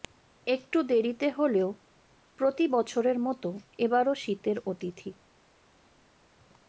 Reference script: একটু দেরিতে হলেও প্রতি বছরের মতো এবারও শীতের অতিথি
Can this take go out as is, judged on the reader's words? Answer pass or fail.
pass